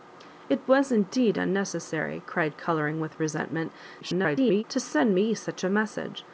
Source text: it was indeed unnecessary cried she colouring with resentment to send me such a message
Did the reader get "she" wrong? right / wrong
wrong